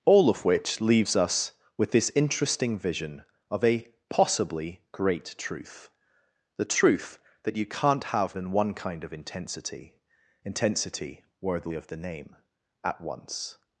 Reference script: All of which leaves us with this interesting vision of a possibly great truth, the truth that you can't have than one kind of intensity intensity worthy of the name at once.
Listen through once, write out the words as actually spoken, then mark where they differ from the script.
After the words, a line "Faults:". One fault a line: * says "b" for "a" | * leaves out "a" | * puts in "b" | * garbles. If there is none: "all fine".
All of which leaves us with this interesting vision of a possibly great truth, the truth that you can't have than one kind of intensity intensity worthy of the name at once.
Faults:
all fine